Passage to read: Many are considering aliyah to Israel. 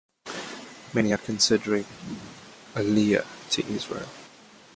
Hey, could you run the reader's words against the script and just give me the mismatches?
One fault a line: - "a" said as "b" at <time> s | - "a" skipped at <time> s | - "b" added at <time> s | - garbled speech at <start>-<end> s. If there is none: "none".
none